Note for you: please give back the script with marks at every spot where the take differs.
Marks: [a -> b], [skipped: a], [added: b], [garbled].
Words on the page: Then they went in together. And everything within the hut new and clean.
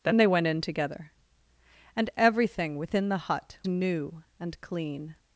Then they went in together. And everything within the hut new and clean.